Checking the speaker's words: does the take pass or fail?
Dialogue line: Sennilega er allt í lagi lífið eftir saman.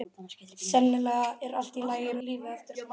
pass